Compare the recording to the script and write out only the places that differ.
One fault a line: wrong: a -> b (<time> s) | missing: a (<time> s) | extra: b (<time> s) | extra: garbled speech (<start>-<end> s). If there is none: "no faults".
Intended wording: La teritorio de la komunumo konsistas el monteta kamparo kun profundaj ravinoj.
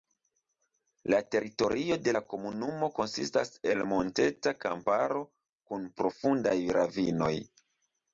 no faults